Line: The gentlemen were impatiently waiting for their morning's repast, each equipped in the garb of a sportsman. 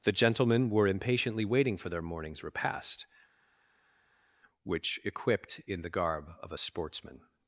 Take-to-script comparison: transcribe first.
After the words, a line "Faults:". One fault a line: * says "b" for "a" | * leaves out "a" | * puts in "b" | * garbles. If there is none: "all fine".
The gentlemen were impatiently waiting for their morning's repast, which equipped in the garb of a sportsman.
Faults:
* says "which" for "each"